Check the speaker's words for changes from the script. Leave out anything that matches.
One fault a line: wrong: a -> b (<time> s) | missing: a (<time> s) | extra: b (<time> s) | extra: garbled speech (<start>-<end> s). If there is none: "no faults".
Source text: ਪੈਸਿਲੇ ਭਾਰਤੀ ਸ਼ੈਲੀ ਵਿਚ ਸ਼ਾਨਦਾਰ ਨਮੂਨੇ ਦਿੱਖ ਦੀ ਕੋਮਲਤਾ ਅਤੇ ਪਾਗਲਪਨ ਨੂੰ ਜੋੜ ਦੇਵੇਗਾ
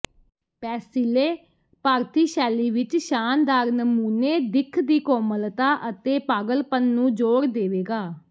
no faults